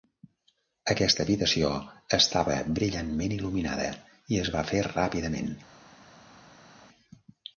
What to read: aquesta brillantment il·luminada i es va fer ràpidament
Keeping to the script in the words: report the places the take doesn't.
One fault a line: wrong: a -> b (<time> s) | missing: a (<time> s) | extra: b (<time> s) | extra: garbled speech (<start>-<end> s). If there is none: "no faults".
extra: habitació estava (1.2 s)